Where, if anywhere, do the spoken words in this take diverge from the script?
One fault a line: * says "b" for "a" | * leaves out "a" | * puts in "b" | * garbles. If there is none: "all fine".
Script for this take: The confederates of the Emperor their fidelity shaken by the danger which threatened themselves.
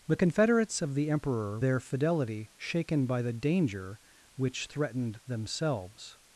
all fine